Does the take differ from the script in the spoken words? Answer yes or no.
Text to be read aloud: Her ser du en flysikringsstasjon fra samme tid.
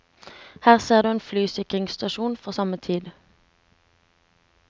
no